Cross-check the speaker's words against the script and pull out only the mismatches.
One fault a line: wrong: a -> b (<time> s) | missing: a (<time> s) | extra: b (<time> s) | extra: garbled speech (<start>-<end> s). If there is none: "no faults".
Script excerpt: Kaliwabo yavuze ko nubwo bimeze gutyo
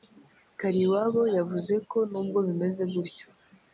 no faults